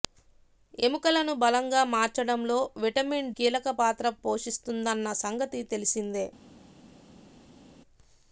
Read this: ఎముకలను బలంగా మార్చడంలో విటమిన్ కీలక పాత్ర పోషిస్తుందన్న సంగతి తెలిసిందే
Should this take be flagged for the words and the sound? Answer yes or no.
no